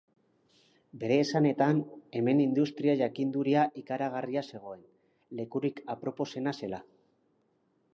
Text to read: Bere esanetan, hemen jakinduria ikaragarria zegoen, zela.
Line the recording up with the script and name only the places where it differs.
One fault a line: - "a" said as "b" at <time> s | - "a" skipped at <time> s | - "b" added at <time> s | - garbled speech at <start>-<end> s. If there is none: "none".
- "industria" added at 2.5 s
- "lekurik aproposena" added at 5.4 s